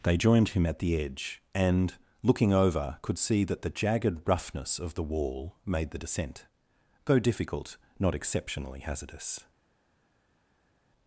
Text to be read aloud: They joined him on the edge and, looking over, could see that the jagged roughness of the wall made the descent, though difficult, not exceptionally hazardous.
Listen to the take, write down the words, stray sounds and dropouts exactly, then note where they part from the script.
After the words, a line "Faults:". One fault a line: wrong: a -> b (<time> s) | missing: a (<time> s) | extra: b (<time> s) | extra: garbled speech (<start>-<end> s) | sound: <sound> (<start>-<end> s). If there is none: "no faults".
They joined him at the edge and, looking over, could see that the jagged roughness of the wall made the descent, though difficult, not exceptionally hazardous.
Faults:
wrong: on -> at (0.7 s)